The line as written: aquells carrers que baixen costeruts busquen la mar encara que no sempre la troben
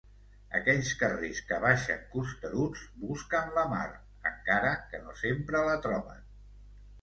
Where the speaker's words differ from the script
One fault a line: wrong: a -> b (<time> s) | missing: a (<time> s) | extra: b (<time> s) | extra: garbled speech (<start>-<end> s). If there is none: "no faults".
no faults